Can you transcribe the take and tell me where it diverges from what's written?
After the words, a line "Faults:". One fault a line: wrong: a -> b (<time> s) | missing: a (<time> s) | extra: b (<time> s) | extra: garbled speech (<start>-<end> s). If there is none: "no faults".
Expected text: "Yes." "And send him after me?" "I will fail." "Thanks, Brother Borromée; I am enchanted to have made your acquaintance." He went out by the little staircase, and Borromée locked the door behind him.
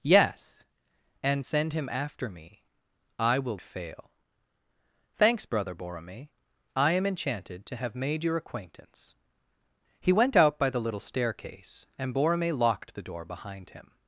"Yes." "And send him after me?" "I will fail." "Thanks, Brother Borromée; I am enchanted to have made your acquaintance." He went out by the little staircase, and Borromée locked the door behind him.
Faults:
no faults